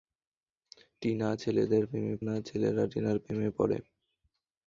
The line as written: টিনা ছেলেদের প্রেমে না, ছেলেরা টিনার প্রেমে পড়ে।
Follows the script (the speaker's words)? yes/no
yes